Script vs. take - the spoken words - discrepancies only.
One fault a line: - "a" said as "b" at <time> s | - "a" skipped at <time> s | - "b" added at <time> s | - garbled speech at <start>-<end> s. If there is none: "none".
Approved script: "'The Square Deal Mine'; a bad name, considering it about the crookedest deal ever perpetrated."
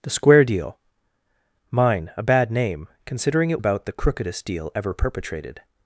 none